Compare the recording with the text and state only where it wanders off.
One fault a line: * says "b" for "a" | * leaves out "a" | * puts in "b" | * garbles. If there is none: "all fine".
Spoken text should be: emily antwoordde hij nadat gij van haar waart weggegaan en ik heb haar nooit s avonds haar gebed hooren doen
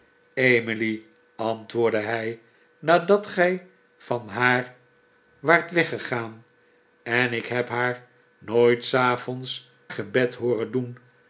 * leaves out "haar"